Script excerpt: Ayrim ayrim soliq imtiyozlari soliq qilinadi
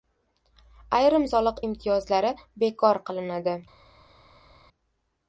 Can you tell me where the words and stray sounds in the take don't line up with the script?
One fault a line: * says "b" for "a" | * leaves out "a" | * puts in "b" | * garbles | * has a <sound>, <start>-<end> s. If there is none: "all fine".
* leaves out "ayrim"
* says "bekor" for "soliq"